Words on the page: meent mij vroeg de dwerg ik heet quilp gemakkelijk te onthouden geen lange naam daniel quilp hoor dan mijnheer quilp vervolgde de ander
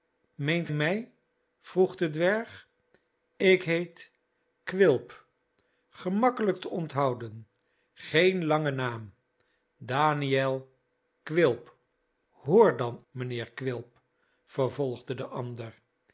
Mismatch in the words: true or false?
false